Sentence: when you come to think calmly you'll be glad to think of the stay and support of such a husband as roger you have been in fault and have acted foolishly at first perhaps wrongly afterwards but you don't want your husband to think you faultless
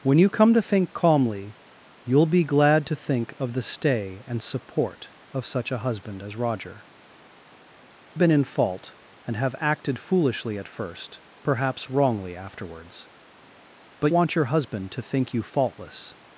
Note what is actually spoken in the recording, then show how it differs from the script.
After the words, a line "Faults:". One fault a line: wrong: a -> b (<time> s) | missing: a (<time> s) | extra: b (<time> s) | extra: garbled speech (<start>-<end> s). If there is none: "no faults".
when you come to think calmly you'll be glad to think of the stay and support of such a husband as roger been in fault and have acted foolishly at first perhaps wrongly afterwards but want your husband to think you faultless
Faults:
missing: you have (6.8 s)
missing: you don't (14.1 s)